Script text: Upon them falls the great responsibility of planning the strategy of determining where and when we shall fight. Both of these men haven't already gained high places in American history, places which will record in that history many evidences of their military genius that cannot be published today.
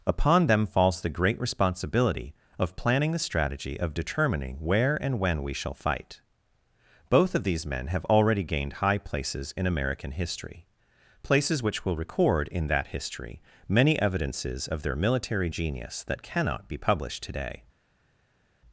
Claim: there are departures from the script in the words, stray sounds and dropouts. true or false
true